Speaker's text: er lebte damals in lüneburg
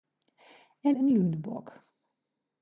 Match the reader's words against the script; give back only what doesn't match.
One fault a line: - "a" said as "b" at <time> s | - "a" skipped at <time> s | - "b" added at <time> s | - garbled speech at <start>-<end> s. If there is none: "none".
- "lebte damals" skipped at 0.9 s